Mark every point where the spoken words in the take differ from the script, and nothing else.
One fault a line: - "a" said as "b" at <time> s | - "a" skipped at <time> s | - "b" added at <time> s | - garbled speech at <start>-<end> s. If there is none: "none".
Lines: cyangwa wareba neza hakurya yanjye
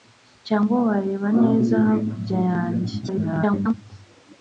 - garbled speech at 3.0-3.7 s